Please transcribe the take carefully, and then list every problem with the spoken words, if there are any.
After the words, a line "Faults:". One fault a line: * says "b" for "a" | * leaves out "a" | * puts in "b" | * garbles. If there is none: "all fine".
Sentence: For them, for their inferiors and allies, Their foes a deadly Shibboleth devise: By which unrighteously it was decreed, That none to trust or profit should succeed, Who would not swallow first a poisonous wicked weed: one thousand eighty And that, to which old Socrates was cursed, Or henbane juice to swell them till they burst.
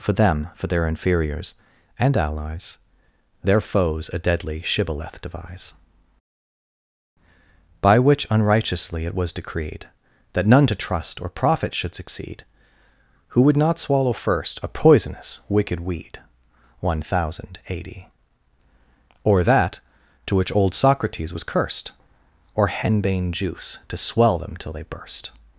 For them, for their inferiors and allies, Their foes a deadly Shibboleth devise: By which unrighteously it was decreed, That none to trust or profit should succeed, Who would not swallow first a poisonous wicked weed: one thousand eighty Or that, to which old Socrates was cursed, Or henbane juice to swell them till they burst.
Faults:
* says "Or" for "And"